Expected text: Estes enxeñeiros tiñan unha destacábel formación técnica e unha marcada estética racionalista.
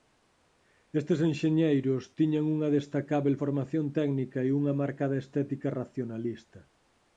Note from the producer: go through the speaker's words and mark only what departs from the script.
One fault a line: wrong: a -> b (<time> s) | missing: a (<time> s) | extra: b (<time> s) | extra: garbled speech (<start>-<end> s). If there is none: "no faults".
no faults